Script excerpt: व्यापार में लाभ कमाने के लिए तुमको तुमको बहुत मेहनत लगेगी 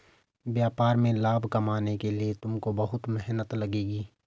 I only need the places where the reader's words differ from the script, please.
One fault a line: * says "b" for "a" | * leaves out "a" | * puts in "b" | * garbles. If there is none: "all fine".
* leaves out "तुमको"